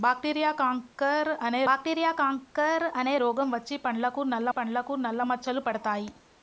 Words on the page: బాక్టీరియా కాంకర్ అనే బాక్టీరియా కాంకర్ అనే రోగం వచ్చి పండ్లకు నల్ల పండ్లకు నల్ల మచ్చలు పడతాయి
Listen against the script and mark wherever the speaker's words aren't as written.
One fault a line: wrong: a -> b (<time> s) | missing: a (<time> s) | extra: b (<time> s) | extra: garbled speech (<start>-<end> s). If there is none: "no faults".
no faults